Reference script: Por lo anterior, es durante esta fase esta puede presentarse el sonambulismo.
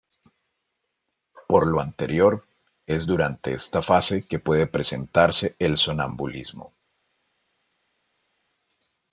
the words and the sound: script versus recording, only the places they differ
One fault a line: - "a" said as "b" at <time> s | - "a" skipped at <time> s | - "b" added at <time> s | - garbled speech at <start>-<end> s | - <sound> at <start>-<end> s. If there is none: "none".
- "esta" said as "que" at 4.3 s